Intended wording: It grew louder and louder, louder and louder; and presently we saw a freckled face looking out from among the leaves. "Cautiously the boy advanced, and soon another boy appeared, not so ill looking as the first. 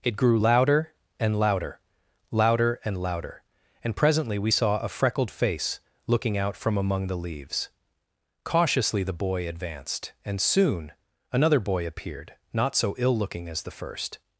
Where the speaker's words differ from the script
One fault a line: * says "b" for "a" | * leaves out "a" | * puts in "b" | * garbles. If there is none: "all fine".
all fine